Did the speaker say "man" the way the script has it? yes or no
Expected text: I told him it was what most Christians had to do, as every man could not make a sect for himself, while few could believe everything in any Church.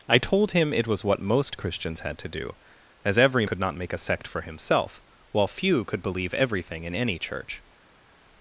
no